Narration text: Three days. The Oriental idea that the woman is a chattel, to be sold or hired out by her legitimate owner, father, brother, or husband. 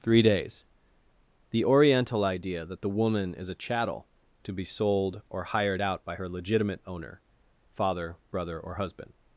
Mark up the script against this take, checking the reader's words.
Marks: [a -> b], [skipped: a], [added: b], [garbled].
Three days. The Oriental idea that the woman is a chattel, to be sold or hired out by her legitimate owner, father, brother, or husband.